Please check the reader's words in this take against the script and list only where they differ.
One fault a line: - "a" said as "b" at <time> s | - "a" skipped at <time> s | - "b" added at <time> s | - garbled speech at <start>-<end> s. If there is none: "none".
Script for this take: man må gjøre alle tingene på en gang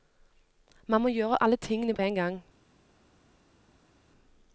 none